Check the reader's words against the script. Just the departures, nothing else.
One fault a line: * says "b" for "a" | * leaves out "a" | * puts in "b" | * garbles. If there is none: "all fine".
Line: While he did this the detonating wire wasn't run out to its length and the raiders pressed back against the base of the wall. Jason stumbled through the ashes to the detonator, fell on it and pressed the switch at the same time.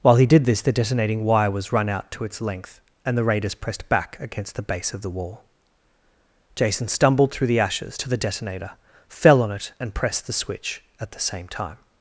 * says "was" for "wasn't"